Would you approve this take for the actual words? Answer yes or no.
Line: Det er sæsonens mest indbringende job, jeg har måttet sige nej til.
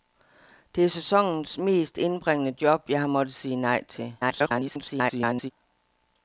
no